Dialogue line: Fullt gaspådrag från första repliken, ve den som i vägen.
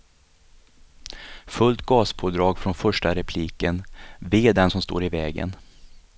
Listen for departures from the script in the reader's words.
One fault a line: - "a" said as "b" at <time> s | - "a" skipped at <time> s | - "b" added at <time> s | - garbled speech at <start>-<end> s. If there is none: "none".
- "står" added at 4.8 s